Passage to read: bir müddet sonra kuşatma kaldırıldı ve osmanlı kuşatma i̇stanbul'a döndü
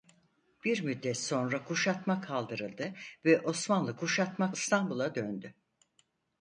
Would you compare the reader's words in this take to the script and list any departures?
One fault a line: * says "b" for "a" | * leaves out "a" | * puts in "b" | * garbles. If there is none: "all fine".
all fine